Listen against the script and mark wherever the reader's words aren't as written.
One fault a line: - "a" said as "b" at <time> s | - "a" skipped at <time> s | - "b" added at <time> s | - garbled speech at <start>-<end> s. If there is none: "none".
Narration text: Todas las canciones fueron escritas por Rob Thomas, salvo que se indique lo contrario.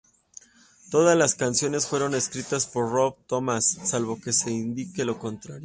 none